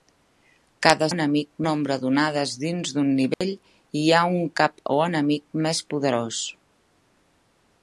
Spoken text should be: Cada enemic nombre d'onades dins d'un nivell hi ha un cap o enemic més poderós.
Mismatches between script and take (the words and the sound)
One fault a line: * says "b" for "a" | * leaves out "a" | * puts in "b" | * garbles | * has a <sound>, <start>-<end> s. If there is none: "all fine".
* has a dropout, 3.3-3.4 s